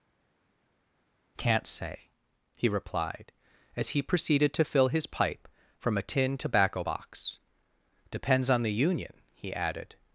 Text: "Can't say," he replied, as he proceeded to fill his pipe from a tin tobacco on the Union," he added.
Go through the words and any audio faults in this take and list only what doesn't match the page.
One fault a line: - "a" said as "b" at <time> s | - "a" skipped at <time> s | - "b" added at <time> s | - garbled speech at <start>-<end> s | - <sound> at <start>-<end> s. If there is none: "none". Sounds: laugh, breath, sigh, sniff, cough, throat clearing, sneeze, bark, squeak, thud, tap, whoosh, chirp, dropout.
- "box Depends" added at 6.8 s